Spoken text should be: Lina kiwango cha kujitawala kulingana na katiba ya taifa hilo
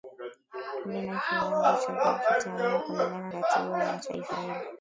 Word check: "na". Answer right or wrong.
wrong